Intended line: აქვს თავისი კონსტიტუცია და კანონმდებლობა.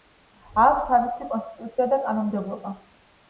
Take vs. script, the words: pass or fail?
pass